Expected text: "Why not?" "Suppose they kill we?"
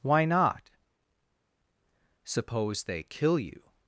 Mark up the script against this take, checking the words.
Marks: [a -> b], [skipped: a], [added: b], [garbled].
"Why not?" "Suppose they kill [we?" -> you]